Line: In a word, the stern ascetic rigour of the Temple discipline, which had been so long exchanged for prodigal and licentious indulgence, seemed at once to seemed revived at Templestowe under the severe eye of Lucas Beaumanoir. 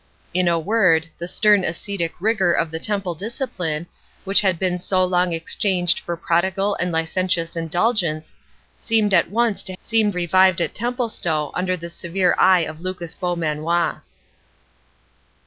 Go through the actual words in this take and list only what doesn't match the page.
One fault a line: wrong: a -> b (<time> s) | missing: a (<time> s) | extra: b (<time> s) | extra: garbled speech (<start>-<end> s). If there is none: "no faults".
no faults